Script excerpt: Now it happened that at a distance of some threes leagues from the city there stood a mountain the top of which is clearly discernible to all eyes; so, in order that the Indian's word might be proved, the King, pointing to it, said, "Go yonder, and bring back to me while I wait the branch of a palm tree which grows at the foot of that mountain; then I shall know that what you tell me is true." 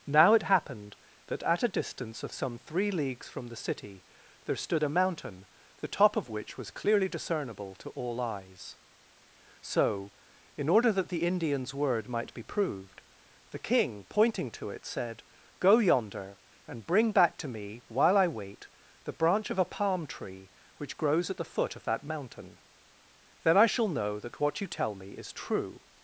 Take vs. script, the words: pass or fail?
fail